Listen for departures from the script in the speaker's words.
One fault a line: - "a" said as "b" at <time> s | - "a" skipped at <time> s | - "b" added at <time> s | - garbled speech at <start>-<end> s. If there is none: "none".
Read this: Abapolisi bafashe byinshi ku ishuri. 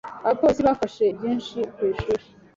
none